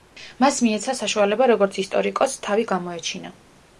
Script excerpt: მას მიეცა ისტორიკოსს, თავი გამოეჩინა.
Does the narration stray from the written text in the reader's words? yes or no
yes